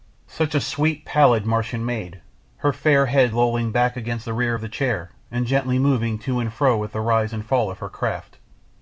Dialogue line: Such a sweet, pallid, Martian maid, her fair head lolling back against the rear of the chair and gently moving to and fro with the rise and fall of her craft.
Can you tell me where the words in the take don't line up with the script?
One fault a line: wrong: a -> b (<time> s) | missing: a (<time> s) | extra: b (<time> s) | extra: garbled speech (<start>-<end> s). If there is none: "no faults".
no faults